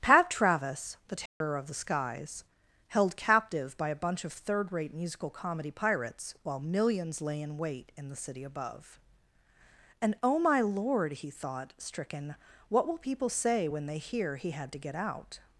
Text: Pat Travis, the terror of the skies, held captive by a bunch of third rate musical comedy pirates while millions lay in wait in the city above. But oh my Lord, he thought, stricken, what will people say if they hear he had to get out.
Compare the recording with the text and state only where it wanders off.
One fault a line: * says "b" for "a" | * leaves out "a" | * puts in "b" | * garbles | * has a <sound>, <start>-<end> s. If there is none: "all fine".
* has a dropout, 1.3-1.4 s
* says "And" for "But"
* says "when" for "if"